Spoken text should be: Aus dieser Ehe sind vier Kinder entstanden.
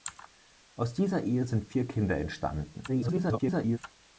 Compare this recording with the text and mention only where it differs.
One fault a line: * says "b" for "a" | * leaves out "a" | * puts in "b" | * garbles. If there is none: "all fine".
* garbles